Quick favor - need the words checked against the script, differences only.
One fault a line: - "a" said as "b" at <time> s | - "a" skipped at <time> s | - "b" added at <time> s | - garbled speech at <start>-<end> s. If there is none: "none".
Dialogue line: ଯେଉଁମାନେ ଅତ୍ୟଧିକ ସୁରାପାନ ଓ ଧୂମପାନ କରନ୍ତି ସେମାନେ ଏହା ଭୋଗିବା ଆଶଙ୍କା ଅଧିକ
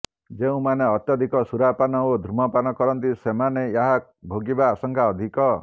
none